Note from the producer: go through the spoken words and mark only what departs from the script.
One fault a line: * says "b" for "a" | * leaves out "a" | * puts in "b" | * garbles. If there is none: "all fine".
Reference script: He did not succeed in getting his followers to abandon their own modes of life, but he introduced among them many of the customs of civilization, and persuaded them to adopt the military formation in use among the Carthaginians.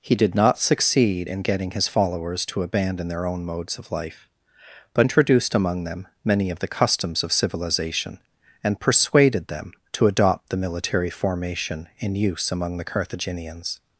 * leaves out "he"